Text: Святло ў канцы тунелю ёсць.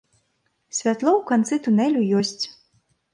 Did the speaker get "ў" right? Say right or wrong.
right